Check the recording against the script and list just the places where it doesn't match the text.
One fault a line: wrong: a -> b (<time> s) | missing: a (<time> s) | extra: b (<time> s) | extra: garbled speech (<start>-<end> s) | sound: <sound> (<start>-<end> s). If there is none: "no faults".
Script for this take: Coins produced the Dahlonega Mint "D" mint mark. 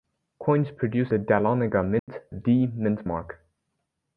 sound: dropout (2.0-2.1 s)